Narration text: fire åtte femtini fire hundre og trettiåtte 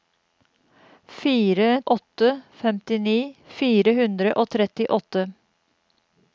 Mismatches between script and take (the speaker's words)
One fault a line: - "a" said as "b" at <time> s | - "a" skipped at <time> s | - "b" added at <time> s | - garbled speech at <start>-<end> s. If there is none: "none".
none